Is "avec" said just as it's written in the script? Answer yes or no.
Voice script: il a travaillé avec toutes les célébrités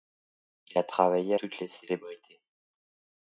no